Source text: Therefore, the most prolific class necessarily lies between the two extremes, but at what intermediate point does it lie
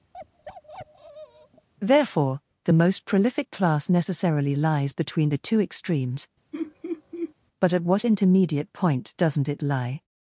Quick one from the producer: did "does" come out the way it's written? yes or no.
no